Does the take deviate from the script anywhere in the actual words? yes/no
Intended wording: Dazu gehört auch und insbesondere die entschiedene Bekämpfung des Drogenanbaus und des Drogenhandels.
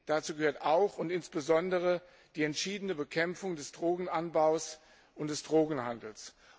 no